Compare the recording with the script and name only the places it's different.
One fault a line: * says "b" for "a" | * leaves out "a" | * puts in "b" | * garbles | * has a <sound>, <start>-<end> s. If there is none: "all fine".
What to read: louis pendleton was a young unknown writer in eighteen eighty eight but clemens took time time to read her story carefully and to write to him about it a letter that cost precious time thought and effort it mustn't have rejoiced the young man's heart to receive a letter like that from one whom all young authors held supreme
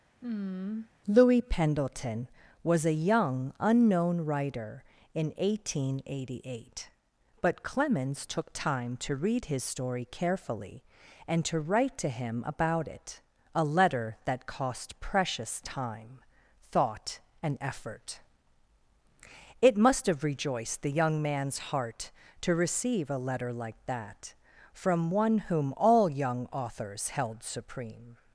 * has a sigh, 0.2-0.9 s
* leaves out "time"
* says "his" for "her"
* says "must" for "mustn't"